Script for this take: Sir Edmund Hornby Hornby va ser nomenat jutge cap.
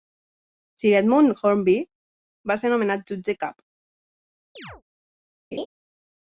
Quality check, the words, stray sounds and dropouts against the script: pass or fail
fail